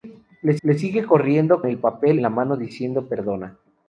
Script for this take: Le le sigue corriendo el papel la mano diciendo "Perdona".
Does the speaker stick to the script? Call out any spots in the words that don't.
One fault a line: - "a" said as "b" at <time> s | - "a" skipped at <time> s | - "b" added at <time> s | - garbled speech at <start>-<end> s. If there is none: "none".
none